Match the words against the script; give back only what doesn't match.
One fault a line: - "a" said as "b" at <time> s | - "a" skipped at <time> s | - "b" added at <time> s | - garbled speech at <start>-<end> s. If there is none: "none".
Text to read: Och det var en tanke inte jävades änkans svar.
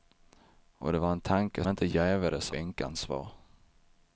none